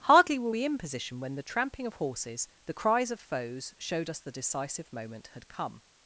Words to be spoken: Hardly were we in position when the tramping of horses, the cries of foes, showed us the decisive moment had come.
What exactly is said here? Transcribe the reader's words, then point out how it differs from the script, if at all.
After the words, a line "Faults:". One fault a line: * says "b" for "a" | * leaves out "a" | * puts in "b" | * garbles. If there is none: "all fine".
Hardly were we in position when the tramping of horses, the cries of foes, showed us the decisive moment had come.
Faults:
all fine